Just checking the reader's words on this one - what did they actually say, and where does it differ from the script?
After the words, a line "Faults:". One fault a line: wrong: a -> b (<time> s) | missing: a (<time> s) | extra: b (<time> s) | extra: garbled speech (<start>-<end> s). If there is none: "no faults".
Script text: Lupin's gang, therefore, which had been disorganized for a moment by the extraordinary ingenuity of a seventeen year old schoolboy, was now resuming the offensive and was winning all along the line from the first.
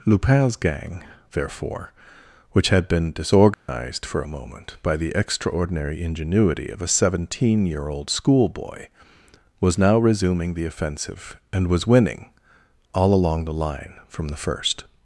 Lupin's gang, therefore, which had been disorganized for a moment by the extraordinary ingenuity of a seventeen year old schoolboy, was now resuming the offensive and was winning all along the line from the first.
Faults:
no faults